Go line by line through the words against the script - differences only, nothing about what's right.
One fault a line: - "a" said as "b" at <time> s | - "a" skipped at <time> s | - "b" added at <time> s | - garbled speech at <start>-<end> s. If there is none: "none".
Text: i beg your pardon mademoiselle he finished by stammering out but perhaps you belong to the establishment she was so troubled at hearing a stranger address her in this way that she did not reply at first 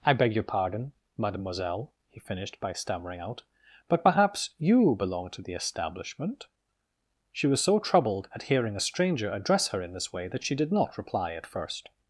none